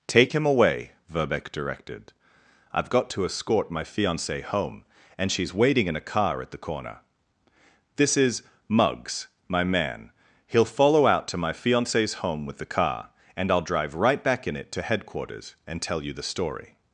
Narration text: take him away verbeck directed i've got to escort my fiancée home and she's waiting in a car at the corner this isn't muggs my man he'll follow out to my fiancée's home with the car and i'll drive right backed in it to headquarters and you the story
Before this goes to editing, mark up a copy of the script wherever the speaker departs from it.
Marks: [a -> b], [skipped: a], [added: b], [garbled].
take him away verbeck directed i've got to escort my fiancée home and she's waiting in a car at the corner this [isn't -> is] muggs my man he'll follow out to my fiancée's home with the car and i'll drive right [backed -> back] in it to headquarters and [added: tell] you the story